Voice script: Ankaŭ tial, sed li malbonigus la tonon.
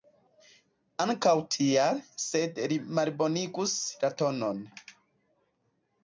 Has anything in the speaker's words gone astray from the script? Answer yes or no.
no